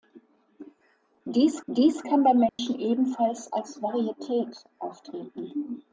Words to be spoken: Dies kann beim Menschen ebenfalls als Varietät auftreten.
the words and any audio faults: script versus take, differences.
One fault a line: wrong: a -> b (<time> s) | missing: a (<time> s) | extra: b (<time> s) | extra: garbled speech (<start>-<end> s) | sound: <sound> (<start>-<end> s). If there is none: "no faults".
extra: dies (1.7 s)
sound: dropout (2.5-2.6 s)